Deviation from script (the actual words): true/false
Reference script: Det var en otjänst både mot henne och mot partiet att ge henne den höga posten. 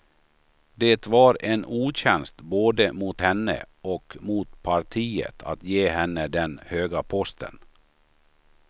false